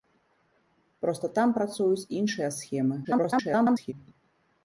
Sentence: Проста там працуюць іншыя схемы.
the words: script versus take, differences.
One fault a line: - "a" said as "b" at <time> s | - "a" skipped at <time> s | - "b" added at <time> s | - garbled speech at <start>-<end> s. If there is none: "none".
- garbled speech at 3.0-3.9 s